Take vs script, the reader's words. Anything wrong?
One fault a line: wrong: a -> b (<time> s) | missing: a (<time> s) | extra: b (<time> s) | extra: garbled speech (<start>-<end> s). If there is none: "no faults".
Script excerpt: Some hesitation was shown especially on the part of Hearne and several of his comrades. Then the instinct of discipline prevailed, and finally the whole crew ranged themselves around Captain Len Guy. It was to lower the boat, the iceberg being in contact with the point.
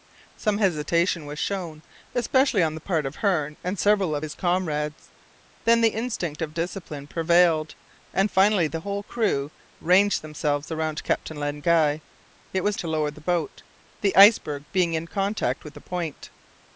no faults